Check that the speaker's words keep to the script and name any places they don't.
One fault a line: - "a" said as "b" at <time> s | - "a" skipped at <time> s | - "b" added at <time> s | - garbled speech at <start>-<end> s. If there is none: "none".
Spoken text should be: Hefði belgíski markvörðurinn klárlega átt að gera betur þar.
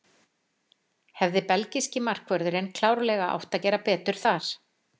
none